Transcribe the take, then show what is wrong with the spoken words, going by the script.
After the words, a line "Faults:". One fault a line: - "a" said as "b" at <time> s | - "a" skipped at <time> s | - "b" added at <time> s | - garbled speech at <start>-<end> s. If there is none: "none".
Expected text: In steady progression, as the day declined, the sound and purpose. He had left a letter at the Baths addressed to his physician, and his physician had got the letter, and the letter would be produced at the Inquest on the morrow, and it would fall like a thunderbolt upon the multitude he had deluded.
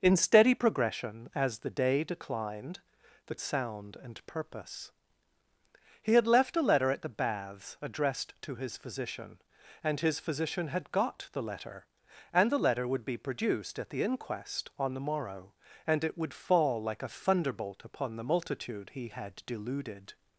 In steady progression, as the day declined, the sound and purpose. He had left a letter at the Baths addressed to his physician, and his physician had got the letter, and the letter would be produced at the Inquest on the morrow, and it would fall like a thunderbolt upon the multitude he had deluded.
Faults:
none